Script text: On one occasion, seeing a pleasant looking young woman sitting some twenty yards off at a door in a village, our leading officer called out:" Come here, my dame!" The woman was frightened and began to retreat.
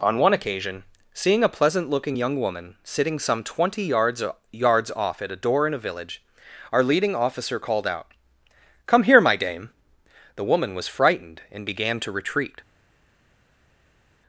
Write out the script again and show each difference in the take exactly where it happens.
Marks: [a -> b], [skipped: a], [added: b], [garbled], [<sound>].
On one occasion, seeing a pleasant looking young woman sitting some twenty yards [added: yards] off at a door in a village, our leading officer called out:" Come here, my dame!" The woman was frightened and began to retreat.